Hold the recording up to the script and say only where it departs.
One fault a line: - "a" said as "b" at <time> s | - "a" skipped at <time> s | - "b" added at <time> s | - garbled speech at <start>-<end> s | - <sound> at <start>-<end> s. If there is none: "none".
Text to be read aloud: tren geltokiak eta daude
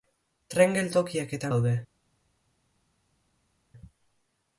none